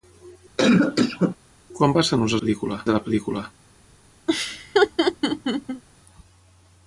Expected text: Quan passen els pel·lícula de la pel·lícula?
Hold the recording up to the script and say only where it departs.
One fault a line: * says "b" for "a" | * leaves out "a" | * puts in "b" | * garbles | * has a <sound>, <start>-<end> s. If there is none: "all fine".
* has a cough, 0.6-1.4 s
* has a laugh, 4.3-5.8 s